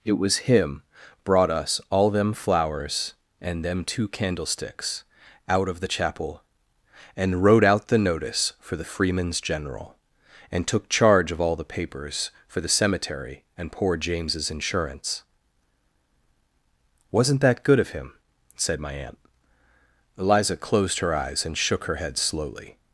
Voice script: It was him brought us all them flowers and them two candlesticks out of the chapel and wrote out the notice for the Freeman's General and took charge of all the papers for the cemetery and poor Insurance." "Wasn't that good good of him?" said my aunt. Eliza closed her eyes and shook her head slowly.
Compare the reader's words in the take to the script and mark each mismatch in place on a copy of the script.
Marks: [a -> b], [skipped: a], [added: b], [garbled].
It was him brought us all them flowers and them two candlesticks out of the chapel and wrote out the notice for the Freeman's General and took charge of all the papers for the cemetery and poor [added: James's] Insurance." "Wasn't that good [skipped: good] of him?" said my aunt. Eliza closed her eyes and shook her head slowly.